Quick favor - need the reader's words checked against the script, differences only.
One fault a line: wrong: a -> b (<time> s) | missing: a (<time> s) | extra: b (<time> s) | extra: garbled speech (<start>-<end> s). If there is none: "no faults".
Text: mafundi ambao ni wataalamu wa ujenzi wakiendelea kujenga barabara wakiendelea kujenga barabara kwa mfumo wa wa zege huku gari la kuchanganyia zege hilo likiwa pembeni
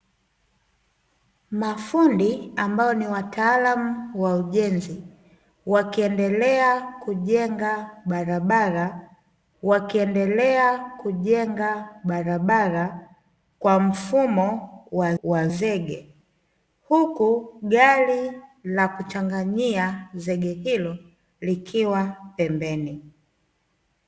no faults